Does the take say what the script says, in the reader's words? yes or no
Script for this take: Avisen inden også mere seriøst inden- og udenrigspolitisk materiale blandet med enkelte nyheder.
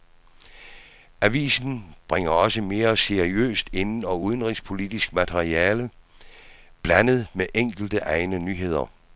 no